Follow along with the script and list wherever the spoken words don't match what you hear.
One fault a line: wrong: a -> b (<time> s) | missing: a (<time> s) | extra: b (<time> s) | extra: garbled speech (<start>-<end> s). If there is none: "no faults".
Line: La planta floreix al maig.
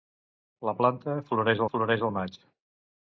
extra: floreix (1.7 s)